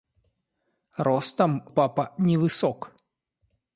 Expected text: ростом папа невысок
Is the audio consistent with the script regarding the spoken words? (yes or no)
yes